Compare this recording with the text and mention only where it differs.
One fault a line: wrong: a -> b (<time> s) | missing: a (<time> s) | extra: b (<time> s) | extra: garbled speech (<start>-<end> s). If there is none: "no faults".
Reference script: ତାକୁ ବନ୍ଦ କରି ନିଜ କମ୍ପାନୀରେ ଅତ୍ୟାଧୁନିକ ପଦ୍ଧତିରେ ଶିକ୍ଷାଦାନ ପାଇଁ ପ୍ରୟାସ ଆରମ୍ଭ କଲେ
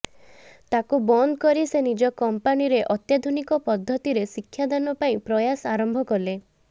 extra: ସେ (1.6 s)